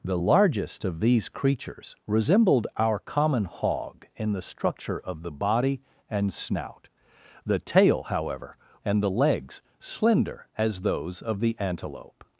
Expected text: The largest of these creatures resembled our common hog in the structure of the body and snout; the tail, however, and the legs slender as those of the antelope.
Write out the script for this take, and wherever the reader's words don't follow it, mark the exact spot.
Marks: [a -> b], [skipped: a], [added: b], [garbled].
The largest of these creatures resembled our common hog in the structure of the body and snout; the tail, however, and the legs slender as those of the antelope.